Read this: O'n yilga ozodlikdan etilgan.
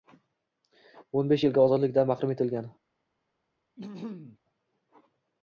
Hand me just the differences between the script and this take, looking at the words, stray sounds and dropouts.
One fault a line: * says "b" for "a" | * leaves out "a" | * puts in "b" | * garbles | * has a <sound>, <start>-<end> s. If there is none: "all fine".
* puts in "besh"
* puts in "mahrum"
* has a throat clearing, 3.8-4.4 s